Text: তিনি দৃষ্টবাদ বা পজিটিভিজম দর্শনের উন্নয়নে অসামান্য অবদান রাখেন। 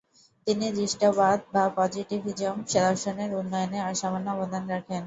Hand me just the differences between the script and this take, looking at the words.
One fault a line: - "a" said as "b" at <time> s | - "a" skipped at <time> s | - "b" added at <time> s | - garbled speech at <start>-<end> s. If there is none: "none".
none